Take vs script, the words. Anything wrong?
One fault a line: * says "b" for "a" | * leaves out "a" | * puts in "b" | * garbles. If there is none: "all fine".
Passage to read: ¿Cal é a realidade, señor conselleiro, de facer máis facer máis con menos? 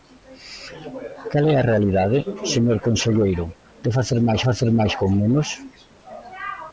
all fine